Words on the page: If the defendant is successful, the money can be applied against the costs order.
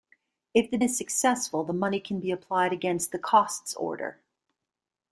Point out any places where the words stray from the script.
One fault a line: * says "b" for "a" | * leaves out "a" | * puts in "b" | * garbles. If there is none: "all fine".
* leaves out "defendant"